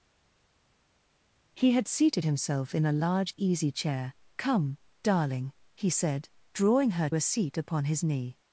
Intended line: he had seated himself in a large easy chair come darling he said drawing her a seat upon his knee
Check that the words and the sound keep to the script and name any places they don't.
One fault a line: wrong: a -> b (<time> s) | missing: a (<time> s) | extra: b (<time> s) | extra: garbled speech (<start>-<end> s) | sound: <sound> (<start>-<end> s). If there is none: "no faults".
no faults